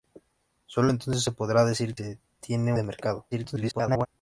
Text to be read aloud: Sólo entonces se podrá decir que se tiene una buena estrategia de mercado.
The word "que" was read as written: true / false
false